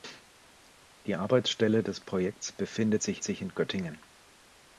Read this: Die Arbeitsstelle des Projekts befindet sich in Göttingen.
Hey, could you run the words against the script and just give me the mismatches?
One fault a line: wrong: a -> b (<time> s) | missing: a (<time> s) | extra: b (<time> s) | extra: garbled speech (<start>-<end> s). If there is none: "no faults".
extra: sich (3.2 s)